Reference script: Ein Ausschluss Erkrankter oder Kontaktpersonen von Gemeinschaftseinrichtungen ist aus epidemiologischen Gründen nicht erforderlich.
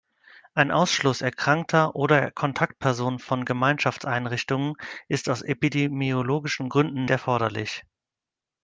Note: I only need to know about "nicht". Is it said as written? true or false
false